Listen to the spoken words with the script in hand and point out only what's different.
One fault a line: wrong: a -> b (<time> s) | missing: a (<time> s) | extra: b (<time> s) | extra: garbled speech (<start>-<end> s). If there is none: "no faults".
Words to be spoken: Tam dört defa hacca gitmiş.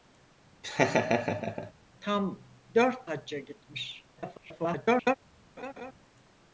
missing: defa (3.1 s)
extra: garbled speech (4.2-5.2 s)